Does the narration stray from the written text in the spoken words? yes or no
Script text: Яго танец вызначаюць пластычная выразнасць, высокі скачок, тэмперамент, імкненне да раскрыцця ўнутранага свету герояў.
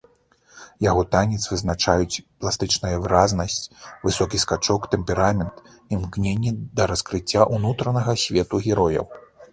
no